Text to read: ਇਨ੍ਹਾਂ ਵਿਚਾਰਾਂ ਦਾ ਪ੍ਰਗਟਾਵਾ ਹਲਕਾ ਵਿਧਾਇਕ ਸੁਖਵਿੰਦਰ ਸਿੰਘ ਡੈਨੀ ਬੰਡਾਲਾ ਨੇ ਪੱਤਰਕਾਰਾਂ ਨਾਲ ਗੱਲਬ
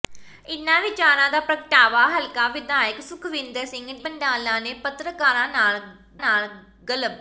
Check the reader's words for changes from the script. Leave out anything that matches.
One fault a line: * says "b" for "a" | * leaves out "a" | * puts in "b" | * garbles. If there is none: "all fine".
* leaves out "ਡੈਨੀ"
* puts in "ਨਾਲ"